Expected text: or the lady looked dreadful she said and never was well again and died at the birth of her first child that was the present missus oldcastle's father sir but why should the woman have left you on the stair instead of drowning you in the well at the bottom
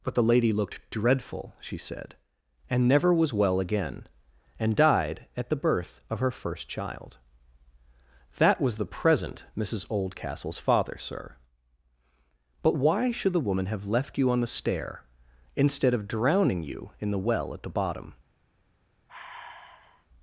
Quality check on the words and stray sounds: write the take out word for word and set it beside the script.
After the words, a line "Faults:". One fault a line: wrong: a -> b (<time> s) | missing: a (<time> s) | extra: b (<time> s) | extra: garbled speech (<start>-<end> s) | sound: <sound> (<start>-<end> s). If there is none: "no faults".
but the lady looked dreadful she said and never was well again and died at the birth of her first child that was the present missus oldcastle's father sir but why should the woman have left you on the stair instead of drowning you in the well at the bottom
Faults:
wrong: or -> but (0.0 s)
sound: sigh (19.1-20.1 s)